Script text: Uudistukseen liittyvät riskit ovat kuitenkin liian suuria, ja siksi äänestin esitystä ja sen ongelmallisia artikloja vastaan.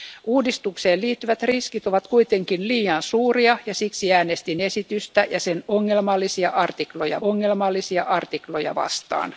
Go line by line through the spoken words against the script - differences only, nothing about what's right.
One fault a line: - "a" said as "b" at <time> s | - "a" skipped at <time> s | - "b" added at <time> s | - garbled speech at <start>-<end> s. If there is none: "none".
- "ongelmallisia artikloja" added at 7.2 s